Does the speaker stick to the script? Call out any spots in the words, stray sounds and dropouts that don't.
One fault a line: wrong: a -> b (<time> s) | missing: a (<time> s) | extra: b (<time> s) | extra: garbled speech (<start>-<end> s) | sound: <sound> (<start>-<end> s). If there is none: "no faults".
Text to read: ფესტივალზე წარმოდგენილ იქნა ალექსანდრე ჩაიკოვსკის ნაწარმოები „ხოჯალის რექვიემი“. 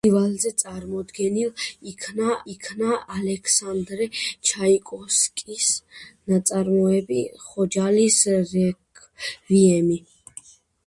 extra: იქნა (2.5 s)